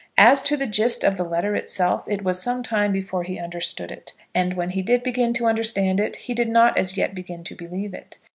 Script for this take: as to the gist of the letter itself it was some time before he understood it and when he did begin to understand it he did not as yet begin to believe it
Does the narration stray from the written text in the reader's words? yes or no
no